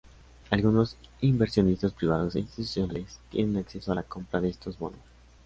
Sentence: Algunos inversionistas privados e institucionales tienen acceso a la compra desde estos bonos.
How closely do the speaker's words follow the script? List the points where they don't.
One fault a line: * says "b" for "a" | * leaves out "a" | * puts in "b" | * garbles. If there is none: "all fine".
* says "de" for "desde"